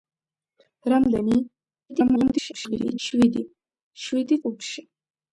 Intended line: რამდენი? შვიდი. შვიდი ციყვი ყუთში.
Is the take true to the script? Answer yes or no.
no